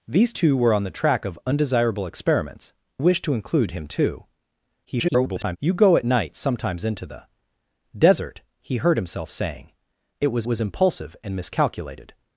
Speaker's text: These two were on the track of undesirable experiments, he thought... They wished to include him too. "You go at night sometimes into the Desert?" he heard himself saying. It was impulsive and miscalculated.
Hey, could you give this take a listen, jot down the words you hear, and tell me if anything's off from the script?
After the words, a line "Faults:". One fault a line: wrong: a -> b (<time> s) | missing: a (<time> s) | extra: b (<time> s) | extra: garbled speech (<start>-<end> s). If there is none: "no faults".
These two were on the track of undesirable experiments, wished to include him too. [garbled] "You go at night sometimes into the Desert?" he heard himself saying. It was was impulsive and miscalculated.
Faults:
missing: he thought They (2.7 s)
extra: garbled speech (4.8-5.6 s)
extra: was (10.4 s)